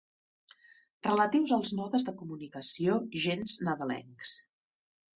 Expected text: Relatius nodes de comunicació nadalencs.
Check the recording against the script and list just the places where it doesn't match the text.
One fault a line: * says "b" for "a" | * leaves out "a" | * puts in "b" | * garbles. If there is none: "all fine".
* puts in "als"
* puts in "gens"